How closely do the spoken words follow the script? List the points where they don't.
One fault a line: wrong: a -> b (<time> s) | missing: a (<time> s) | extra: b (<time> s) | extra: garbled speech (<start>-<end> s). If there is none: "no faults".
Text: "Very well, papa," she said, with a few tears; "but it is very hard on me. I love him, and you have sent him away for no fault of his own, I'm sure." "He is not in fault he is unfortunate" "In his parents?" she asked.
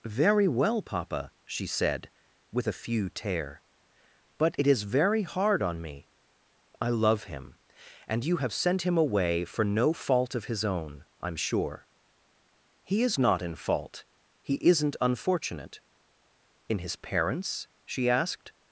wrong: tears -> tear (3.1 s)
wrong: is -> isn't (14.6 s)